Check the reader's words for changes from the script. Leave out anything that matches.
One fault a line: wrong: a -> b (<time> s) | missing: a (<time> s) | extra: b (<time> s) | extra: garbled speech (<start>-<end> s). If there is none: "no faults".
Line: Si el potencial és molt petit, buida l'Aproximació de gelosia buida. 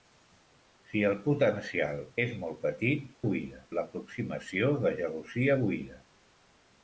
no faults